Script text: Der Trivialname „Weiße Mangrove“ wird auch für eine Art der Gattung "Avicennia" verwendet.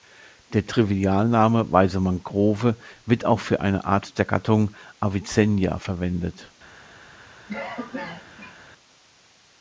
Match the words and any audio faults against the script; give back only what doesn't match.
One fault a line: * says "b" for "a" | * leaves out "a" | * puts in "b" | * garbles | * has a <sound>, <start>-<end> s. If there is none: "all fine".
* has a cough, 7.5-8.6 s